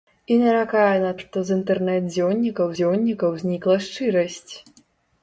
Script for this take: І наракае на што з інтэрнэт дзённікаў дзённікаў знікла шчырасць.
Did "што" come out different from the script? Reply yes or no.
no